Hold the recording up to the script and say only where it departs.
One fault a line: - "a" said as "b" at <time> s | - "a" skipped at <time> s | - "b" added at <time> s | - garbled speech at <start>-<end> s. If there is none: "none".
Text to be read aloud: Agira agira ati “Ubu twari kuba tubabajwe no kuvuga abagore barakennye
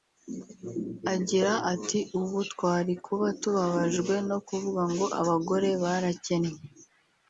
- "agira" skipped at 1.5 s
- "ngo" added at 4.9 s